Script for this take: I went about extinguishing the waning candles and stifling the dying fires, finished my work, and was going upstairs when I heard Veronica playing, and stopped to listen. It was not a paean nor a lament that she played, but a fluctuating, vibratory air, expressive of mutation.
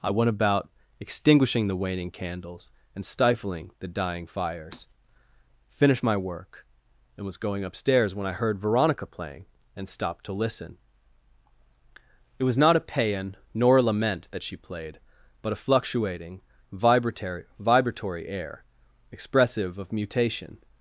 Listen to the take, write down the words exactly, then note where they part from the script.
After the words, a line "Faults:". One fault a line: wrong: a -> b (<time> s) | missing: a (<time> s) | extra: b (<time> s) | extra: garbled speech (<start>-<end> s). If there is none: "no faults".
I went about extinguishing the waning candles and stifling the dying fires, finished my work, and was going upstairs when I heard Veronica playing, and stopped to listen. It was not a paean nor a lament that she played, but a fluctuating, vibratory vibratory air, expressive of mutation.
Faults:
extra: vibratory (17.6 s)